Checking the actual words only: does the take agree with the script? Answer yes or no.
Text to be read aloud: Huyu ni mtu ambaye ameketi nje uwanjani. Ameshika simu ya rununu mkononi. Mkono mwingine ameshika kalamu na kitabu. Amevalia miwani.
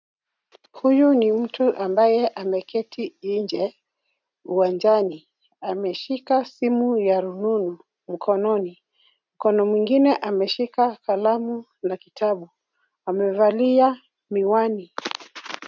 yes